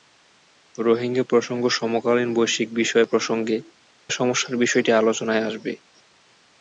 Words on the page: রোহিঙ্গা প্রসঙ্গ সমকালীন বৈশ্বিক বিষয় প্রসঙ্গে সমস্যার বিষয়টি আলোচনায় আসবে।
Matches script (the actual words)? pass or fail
pass